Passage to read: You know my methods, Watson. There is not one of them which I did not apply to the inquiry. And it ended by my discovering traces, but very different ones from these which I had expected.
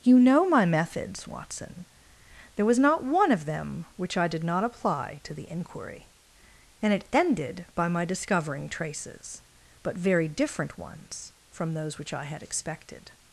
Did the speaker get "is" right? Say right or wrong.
wrong